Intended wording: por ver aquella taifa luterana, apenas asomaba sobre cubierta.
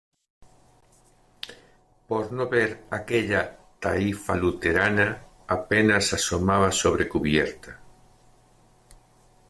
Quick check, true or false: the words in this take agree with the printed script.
false